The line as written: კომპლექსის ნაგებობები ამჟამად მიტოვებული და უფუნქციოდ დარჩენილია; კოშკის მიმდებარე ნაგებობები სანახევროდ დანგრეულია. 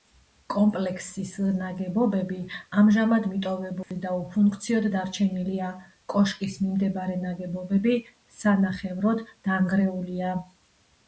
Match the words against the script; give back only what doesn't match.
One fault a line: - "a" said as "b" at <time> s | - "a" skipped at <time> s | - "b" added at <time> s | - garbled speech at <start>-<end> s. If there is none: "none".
none